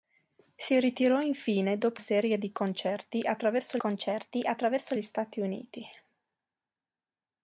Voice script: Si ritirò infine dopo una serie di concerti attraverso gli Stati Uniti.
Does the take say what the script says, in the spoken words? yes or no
no